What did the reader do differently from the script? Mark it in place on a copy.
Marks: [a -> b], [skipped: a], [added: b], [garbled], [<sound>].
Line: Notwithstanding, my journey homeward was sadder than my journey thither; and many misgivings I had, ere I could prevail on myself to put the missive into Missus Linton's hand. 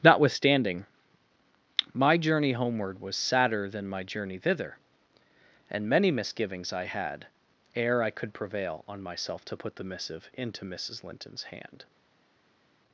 Notwithstanding, my journey homeward was sadder than my journey thither; and many misgivings I had, ere I could prevail on myself to put the missive into Missus Linton's hand.